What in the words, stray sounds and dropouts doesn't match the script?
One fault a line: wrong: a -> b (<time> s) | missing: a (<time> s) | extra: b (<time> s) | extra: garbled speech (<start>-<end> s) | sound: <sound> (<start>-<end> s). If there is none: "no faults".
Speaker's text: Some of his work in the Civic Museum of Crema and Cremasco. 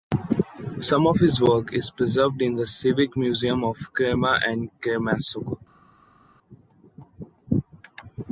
extra: is preserved (1.7 s)